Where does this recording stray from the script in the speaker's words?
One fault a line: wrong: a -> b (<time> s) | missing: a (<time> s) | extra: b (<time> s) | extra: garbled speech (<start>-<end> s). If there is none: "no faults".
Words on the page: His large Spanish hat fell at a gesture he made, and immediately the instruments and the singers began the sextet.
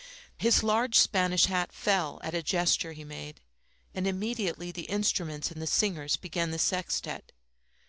no faults